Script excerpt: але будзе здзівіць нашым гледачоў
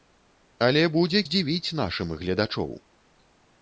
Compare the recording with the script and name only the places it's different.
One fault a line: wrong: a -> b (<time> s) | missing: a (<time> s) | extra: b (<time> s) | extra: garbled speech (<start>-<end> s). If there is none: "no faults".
no faults